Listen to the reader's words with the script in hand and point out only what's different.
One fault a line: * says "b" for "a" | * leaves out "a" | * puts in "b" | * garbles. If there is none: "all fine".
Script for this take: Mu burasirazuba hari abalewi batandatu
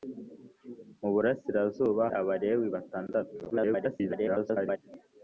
* leaves out "hari"
* garbles